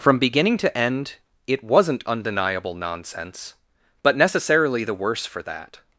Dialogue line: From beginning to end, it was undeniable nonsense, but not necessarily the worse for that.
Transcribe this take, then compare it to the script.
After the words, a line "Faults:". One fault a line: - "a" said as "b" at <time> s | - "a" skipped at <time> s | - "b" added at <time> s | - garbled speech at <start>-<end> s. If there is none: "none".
From beginning to end, it wasn't undeniable nonsense, but necessarily the worse for that.
Faults:
- "was" said as "wasn't" at 1.6 s
- "not" skipped at 4.2 s